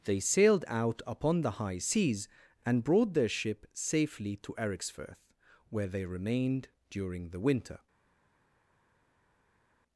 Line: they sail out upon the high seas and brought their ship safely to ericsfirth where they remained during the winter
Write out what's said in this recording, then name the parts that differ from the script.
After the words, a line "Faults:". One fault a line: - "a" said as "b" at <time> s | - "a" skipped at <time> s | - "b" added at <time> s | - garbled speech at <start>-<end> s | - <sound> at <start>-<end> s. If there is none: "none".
they sailed out upon the high seas and brought their ship safely to ericsfirth where they remained during the winter
Faults:
- "sail" said as "sailed" at 0.2 s